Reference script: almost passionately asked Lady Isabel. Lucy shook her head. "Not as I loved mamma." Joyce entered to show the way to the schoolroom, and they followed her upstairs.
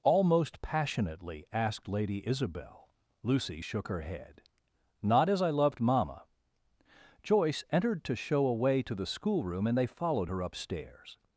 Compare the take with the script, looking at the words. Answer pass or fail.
fail